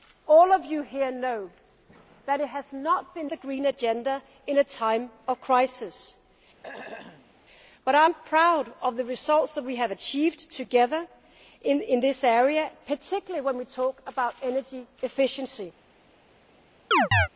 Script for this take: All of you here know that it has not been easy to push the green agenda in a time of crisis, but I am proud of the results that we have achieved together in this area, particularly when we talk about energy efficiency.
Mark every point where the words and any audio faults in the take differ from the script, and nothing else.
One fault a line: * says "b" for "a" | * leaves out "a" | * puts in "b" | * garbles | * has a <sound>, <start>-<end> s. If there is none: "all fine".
* leaves out "easy to push"
* has a throat clearing, 6.6-7.3 s
* has a chirp, 16.9-17.3 s